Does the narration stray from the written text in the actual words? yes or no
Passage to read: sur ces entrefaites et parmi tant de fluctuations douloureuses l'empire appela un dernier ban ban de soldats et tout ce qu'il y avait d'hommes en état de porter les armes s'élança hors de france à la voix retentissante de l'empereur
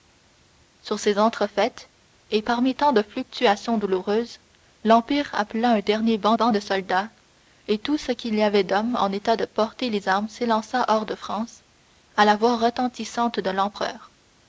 no